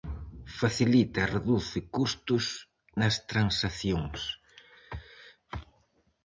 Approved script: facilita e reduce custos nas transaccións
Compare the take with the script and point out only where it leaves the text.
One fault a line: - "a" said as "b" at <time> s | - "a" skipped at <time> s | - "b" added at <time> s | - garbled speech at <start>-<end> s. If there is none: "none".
none